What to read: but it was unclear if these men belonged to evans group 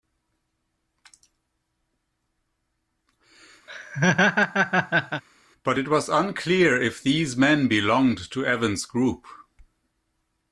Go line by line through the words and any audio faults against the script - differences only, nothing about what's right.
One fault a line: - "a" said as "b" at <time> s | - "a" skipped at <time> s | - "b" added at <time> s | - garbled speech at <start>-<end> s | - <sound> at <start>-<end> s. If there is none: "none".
- laugh at 3.7-5.2 s